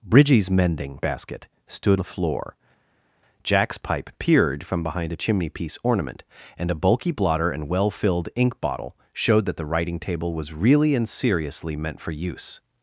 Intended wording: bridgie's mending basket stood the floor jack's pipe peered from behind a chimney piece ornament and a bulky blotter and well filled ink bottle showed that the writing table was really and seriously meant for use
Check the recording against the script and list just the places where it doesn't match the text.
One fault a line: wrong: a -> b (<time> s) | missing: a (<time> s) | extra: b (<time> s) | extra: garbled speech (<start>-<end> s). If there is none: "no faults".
no faults